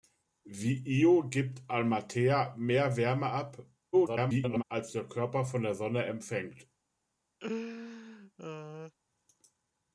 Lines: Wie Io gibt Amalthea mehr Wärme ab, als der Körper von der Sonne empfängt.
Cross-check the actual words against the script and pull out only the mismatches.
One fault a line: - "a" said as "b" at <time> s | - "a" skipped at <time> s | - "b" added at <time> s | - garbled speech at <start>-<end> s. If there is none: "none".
- garbled speech at 3.9-4.6 s